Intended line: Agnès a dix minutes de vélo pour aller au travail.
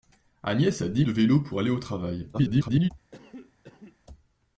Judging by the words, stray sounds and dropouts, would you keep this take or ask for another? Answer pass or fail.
fail